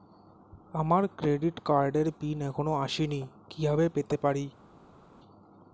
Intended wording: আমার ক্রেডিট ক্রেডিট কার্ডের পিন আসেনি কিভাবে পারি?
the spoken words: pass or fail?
fail